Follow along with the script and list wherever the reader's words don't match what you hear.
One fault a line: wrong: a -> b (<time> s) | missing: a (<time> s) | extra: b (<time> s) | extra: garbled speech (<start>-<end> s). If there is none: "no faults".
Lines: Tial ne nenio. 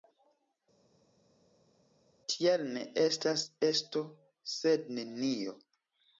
extra: estas esto sed (3.0 s)